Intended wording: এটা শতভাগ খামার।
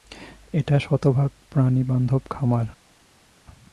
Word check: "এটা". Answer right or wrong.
right